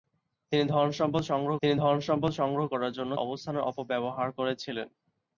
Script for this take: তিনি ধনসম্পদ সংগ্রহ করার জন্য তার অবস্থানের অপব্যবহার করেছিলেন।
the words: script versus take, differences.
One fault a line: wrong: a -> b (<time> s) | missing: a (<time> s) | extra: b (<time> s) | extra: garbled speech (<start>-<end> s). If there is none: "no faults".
extra: তিনি ধনসম্পদ সংগ্রহ (1.6 s)
missing: তার (3.1 s)